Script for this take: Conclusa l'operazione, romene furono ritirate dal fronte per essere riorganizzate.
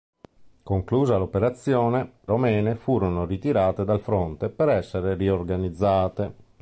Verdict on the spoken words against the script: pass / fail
pass